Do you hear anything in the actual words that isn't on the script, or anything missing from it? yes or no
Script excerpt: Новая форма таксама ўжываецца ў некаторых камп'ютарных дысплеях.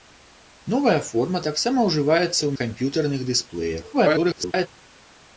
yes